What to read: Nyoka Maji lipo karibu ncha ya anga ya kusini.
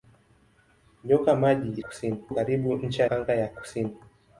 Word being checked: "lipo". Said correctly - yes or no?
no